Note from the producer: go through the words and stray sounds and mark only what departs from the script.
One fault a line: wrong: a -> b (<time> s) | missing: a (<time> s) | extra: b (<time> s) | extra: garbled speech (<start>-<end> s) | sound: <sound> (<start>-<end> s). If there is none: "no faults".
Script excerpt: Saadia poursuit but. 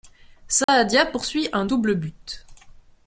sound: dropout (0.6-0.7 s)
extra: un double (1.5 s)